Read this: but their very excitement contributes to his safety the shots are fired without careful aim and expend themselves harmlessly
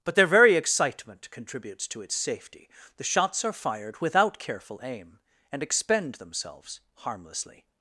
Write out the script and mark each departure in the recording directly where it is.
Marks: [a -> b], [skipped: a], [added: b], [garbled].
but their very excitement contributes to [his -> its] safety the shots are fired without careful aim and expend themselves harmlessly